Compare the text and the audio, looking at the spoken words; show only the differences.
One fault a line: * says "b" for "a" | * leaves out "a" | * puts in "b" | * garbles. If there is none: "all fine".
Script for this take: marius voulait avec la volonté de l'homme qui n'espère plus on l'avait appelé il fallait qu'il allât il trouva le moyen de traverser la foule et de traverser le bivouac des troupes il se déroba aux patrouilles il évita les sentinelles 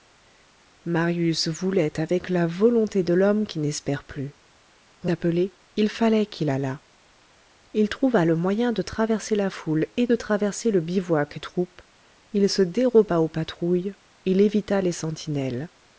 * leaves out "l'avait"
* leaves out "des"